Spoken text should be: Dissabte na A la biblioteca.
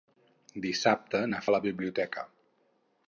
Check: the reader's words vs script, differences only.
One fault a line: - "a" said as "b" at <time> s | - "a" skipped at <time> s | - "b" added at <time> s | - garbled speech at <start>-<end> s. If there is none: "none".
none